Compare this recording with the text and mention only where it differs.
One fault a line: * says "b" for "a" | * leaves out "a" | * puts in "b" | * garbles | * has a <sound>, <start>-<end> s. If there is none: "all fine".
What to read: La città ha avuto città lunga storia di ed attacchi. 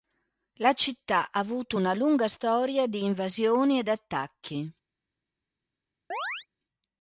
* says "una" for "città"
* puts in "invasioni"
* has a chirp, 6.1-6.5 s